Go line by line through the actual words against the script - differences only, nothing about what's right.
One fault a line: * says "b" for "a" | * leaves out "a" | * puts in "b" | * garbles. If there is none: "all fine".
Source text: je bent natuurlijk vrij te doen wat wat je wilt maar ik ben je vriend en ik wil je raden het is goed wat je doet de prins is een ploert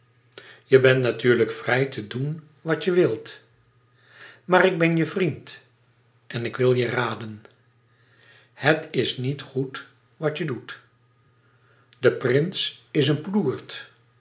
* leaves out "wat"
* puts in "niet"